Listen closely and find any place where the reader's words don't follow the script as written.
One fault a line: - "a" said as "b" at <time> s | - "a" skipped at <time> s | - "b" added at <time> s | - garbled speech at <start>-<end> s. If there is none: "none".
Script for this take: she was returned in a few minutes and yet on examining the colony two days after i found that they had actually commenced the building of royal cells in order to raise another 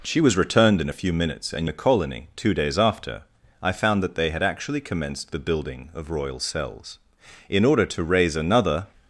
- "yet on examining" skipped at 1.7 s